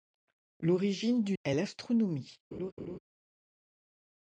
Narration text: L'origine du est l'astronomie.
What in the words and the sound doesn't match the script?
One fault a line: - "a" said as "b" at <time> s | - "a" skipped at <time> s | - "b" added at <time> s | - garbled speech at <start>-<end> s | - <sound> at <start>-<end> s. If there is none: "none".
- laugh at 2.5-3.0 s